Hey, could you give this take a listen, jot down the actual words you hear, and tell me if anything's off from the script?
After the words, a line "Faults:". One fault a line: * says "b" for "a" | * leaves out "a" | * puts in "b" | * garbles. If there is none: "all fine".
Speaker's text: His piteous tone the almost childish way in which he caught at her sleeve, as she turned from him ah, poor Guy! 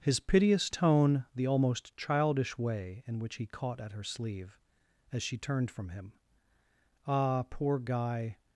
His piteous tone the almost childish way in which he caught at her sleeve, as she turned from him ah, poor Guy!
Faults:
all fine